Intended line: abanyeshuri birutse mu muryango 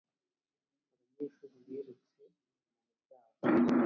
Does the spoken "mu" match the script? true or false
true